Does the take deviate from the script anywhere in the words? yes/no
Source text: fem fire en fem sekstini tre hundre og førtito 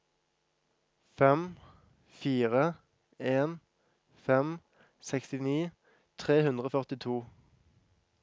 no